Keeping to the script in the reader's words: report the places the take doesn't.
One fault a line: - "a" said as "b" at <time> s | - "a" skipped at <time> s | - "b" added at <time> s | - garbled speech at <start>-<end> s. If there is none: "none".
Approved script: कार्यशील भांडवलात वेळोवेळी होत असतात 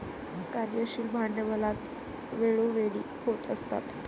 none